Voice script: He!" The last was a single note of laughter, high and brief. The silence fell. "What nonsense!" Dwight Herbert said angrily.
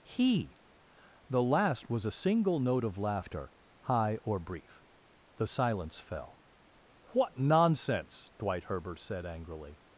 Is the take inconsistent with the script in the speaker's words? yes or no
yes